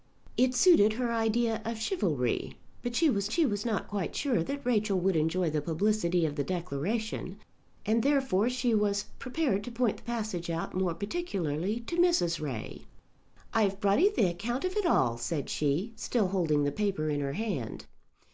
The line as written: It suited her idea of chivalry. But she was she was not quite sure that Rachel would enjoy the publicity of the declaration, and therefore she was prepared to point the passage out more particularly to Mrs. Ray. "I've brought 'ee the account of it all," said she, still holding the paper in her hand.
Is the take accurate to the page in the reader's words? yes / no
yes